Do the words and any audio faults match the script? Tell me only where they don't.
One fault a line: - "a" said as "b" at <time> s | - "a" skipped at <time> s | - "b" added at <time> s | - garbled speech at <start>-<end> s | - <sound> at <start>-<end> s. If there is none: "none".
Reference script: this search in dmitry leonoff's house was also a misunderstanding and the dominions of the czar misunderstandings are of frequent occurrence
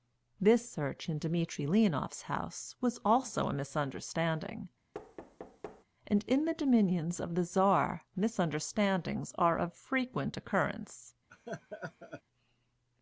- thud at 4.9-5.8 s
- "in" added at 6.2 s
- laugh at 11.3-12.2 s